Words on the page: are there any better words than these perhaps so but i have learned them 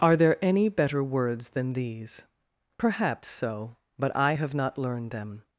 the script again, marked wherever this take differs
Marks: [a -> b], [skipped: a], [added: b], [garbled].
are there any better words than these perhaps so but i have [added: not] learned them